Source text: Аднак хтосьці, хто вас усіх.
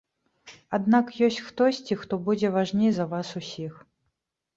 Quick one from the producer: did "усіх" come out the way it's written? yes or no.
yes